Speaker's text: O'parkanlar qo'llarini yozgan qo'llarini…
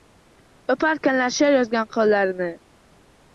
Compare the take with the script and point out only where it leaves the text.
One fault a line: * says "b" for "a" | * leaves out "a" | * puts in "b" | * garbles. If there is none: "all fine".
* says "she'r" for "qo'llarini"